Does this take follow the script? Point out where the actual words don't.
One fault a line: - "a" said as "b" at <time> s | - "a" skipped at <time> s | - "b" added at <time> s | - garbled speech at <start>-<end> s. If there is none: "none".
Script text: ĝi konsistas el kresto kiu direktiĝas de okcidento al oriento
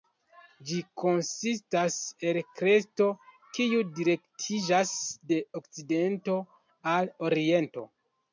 none